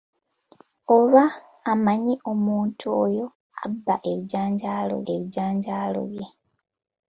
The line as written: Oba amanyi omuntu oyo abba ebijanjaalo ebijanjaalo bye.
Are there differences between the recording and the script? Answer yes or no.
no